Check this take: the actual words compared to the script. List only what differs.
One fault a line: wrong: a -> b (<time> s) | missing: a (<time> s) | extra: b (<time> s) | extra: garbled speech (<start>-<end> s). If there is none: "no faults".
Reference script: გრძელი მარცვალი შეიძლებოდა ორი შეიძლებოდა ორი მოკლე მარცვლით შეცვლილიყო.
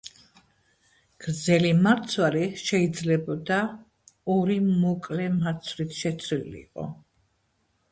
missing: შეიძლებოდა ორი (4.6 s)